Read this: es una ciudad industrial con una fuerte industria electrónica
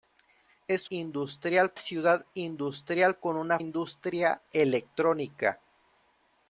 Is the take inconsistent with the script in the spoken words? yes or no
yes